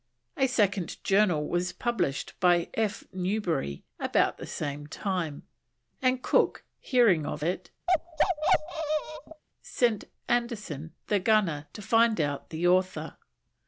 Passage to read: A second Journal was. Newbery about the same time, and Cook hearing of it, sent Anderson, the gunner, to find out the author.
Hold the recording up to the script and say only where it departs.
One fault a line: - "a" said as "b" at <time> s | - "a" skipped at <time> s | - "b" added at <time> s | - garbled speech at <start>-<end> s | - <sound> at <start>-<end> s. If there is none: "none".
- "published by F" added at 1.7 s
- bark at 7.9-9.4 s